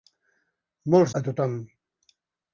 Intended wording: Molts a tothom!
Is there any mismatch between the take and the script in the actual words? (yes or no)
no